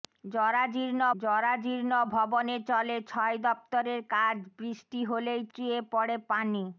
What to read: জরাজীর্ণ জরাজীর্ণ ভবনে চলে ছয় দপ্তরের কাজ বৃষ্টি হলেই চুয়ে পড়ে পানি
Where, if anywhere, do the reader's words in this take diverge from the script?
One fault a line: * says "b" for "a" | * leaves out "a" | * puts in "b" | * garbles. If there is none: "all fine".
all fine